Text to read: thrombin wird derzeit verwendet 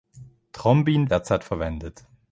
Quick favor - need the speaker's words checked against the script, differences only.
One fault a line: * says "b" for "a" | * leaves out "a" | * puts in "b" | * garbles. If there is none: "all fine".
* leaves out "wird"